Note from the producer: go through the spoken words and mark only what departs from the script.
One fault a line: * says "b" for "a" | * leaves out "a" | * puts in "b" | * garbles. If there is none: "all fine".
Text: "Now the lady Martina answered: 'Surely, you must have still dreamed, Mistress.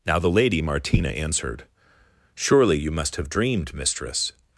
* leaves out "still"